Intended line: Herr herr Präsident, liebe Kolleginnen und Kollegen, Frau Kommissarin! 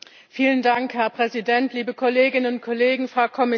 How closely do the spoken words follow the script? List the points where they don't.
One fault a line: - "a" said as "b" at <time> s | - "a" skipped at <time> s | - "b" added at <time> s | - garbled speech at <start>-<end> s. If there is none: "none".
- "herr" skipped at 1.1 s